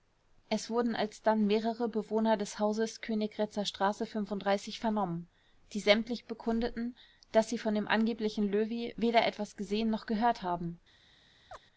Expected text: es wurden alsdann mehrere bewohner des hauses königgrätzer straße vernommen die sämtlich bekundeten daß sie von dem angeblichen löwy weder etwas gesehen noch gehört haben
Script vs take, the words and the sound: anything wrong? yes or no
yes